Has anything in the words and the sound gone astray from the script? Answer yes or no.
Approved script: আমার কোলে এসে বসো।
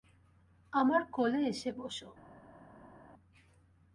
no